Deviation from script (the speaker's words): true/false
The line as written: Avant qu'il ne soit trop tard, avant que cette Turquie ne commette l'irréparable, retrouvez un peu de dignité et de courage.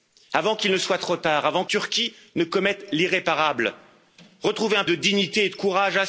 true